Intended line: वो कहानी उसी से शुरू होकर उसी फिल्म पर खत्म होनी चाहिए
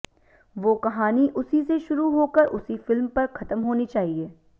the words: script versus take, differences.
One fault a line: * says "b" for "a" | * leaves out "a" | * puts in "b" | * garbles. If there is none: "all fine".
all fine